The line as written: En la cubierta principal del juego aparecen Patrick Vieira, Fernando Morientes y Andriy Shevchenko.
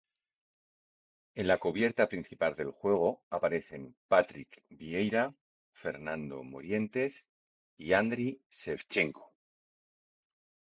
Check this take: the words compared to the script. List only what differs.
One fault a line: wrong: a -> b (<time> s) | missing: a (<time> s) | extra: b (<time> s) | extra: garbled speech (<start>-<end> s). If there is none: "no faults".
no faults